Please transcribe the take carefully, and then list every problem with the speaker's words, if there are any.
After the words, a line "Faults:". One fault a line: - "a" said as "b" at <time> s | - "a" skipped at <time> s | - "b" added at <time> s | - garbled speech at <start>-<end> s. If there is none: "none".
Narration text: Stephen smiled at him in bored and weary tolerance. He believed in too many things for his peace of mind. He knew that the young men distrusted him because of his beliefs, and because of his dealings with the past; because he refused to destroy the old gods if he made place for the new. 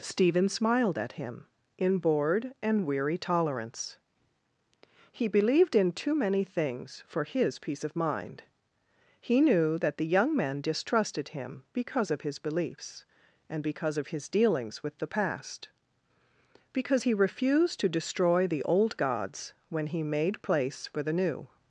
Stephen smiled at him in bored and weary tolerance. He believed in too many things for his peace of mind. He knew that the young men distrusted him because of his beliefs, and because of his dealings with the past; because he refused to destroy the old gods when he made place for the new.
Faults:
- "if" said as "when" at 19.7 s